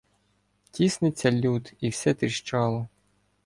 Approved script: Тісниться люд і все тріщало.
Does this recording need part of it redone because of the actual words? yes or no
no